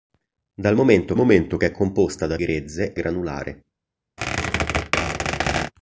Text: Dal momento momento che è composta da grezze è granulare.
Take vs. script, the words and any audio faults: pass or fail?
fail